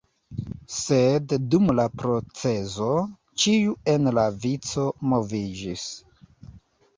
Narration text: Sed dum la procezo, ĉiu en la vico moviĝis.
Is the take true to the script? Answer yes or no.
yes